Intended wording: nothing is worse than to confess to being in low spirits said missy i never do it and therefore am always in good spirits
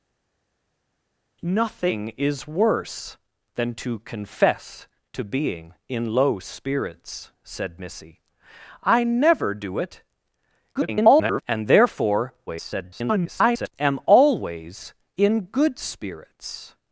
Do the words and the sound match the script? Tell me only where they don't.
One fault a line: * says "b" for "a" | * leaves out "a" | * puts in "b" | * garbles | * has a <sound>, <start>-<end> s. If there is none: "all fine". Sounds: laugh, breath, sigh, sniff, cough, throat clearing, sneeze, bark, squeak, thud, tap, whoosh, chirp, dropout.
* garbles
* garbles